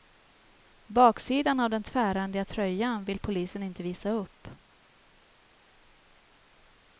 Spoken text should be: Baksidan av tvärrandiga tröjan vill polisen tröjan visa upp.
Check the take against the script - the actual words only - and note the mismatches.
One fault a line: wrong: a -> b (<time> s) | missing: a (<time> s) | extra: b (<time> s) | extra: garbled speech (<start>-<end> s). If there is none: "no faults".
extra: den (1.7 s)
wrong: tröjan -> inte (3.6 s)